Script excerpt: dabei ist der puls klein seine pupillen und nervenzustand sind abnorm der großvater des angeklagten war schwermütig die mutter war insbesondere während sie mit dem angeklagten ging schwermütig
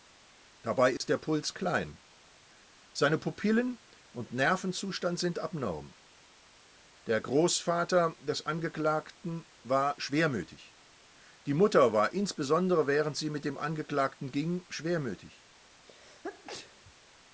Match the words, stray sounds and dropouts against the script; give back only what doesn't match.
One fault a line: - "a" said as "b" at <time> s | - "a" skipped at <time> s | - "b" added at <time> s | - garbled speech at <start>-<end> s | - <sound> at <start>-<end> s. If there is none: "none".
- dropout at 1.0-1.0 s
- sneeze at 15.9-16.9 s